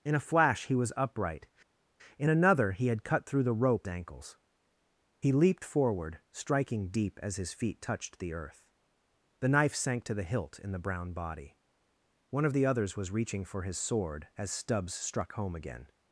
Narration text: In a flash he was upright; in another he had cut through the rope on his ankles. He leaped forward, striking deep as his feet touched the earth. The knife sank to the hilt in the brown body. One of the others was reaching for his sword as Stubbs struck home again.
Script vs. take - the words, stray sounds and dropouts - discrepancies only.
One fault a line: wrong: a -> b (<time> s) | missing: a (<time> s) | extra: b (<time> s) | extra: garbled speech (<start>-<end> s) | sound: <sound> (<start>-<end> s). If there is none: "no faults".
missing: on his (3.9 s)